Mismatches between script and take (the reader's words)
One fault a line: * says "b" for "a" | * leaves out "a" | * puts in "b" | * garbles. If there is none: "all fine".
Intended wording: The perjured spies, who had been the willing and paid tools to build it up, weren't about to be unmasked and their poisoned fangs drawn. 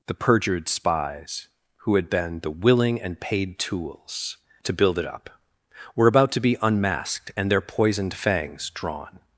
* says "were" for "weren't"